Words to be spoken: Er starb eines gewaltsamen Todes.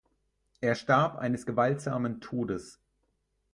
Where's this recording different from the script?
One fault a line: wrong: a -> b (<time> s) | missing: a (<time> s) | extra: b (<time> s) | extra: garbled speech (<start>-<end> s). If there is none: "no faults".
no faults